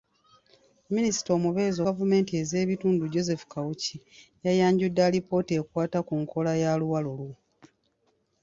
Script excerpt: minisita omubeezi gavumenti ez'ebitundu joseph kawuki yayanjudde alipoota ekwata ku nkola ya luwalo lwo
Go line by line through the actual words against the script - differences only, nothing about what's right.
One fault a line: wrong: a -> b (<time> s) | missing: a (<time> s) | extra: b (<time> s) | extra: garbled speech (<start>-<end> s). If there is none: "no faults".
no faults